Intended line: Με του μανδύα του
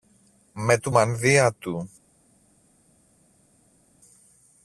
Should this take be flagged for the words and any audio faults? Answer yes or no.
no